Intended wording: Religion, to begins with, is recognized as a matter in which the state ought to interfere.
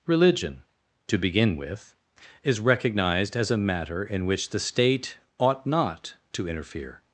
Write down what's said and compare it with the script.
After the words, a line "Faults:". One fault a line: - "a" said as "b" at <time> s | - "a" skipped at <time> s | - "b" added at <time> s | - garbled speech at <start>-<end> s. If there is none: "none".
Religion, to begin with, is recognized as a matter in which the state ought not to interfere.
Faults:
- "begins" said as "begin" at 1.2 s
- "not" added at 5.7 s